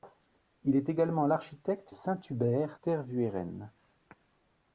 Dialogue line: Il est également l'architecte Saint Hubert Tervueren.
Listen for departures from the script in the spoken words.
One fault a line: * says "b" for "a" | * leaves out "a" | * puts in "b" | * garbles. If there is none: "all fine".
all fine